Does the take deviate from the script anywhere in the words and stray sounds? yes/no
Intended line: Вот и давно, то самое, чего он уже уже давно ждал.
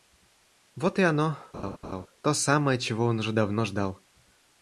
yes